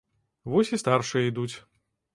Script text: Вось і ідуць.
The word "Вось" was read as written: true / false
true